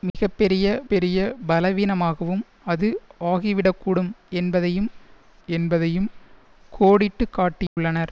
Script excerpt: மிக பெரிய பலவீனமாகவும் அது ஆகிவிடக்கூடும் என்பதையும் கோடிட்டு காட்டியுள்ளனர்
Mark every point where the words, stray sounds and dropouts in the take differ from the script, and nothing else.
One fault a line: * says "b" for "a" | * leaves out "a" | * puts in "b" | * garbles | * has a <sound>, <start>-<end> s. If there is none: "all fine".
* has a dropout, 0.1-0.1 s
* puts in "பெரிய"
* puts in "என்பதையும்"
* has a dropout, 7.7-7.8 s